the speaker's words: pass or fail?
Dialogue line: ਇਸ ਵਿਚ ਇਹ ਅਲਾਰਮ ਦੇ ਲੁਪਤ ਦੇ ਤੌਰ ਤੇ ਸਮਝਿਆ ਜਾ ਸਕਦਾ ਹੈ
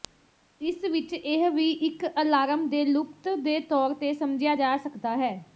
fail